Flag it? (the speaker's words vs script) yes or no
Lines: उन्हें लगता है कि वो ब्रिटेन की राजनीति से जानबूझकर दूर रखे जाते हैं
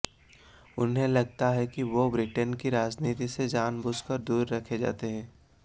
no